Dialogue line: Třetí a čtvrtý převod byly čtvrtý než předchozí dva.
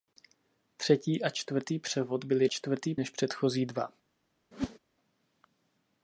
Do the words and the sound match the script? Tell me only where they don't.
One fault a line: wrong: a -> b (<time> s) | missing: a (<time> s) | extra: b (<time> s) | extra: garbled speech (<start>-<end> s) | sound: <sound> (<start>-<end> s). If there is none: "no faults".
sound: whoosh (4.5-4.8 s)